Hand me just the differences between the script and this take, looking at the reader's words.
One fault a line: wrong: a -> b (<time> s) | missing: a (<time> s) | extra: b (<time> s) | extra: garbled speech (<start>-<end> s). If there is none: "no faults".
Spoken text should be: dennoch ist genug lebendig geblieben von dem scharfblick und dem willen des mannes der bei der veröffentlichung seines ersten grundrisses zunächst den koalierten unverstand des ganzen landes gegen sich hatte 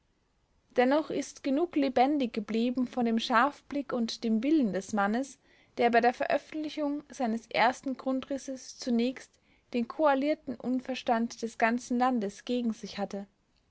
no faults